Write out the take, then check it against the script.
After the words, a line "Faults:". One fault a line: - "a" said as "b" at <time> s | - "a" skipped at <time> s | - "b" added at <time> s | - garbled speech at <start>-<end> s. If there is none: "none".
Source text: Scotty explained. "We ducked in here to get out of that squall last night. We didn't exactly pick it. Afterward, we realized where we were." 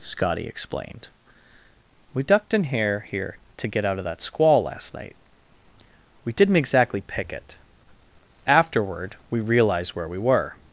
Scotty explained. "We ducked in here here to get out of that squall last night. We didn't exactly pick it. Afterward, we realized where we were."
Faults:
- "here" added at 3.1 s